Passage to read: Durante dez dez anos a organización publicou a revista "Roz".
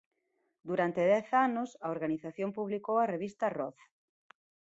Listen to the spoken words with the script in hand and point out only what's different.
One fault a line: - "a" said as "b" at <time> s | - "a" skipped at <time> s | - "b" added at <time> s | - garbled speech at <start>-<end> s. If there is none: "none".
- "dez" skipped at 1.3 s